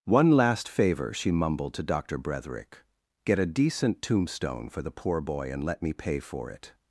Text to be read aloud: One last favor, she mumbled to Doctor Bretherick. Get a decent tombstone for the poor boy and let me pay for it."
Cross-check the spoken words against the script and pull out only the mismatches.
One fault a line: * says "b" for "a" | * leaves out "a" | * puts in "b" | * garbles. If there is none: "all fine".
all fine